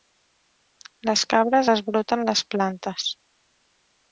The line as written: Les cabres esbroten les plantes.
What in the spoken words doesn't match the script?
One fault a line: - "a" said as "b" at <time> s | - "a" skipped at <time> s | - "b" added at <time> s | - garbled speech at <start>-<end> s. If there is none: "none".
none